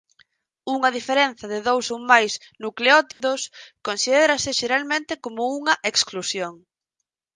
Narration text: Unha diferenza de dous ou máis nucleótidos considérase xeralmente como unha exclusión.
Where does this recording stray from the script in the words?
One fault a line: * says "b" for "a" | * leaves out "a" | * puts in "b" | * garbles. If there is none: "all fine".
all fine